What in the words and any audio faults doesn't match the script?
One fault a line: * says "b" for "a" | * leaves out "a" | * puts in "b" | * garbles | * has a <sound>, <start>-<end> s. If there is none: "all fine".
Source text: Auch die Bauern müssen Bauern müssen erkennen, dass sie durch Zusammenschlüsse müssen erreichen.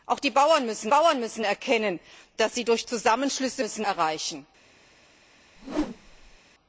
* has a whoosh, 5.6-6.4 s